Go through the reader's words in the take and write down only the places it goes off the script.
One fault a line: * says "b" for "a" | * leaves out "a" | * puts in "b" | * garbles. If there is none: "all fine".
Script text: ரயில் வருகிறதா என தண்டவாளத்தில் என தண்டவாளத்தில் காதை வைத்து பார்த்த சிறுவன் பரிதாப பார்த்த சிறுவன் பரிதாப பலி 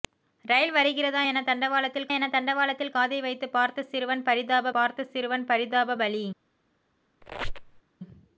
all fine